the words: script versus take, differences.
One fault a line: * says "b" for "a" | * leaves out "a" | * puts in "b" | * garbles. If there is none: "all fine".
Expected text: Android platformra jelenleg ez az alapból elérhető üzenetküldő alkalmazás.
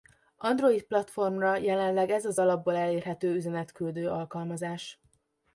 all fine